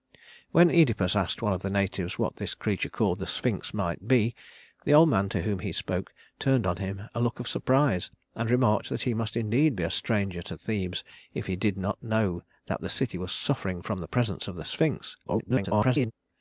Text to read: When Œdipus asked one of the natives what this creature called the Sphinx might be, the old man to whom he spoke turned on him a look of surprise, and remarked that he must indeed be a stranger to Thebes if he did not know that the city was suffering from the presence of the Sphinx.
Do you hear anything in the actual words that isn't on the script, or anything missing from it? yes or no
yes